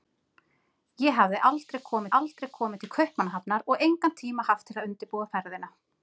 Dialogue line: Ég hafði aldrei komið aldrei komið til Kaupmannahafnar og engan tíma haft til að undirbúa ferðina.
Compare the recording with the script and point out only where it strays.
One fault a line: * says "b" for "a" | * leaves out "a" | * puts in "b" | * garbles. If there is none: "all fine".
all fine